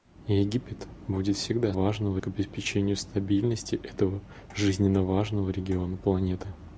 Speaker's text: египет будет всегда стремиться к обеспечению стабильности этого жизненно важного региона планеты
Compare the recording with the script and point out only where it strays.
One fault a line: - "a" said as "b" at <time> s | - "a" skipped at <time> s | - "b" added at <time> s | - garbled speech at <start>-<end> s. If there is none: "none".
- "стремиться" said as "важного" at 1.7 s